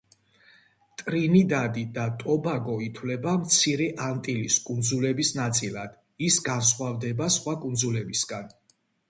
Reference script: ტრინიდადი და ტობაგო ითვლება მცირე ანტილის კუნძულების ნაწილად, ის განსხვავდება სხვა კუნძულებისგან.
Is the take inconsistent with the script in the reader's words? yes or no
no